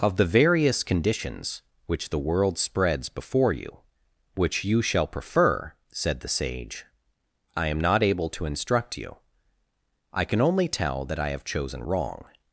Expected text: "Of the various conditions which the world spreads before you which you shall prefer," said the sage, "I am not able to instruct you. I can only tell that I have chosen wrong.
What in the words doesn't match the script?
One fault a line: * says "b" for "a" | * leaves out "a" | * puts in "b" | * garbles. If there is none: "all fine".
all fine